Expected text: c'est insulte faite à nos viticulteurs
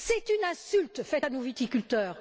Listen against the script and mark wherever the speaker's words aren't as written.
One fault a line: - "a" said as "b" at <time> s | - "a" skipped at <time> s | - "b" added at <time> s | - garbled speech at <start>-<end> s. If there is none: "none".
- "une" added at 0.3 s